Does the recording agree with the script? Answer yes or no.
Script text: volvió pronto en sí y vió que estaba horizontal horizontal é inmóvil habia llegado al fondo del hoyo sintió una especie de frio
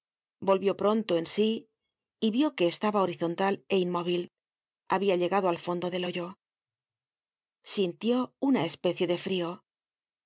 no